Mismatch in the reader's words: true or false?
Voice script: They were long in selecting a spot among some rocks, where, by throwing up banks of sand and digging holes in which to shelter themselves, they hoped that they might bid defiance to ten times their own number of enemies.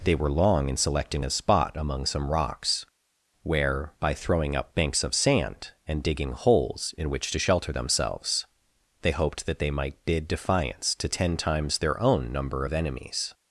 false